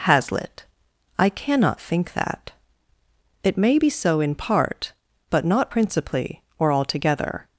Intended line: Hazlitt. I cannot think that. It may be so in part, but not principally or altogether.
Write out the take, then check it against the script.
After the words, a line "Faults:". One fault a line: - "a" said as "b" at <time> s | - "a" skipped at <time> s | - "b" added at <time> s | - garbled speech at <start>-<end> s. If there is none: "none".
Hazlitt. I cannot think that. It may be so in part, but not principally or altogether.
Faults:
none